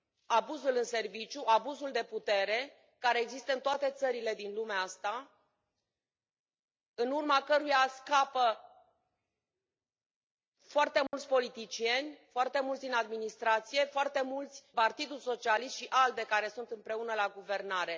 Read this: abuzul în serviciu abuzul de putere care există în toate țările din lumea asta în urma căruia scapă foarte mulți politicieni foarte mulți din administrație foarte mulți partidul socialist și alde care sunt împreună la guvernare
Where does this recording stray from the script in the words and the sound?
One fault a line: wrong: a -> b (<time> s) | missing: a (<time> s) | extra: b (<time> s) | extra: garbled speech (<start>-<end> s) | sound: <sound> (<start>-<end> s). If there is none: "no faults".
sound: dropout (11.1-11.1 s)